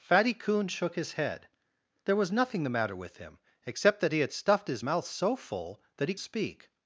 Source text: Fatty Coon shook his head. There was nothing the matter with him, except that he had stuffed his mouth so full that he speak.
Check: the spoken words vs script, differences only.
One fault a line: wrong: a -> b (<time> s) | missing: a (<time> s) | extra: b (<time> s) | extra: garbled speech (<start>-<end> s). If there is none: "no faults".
no faults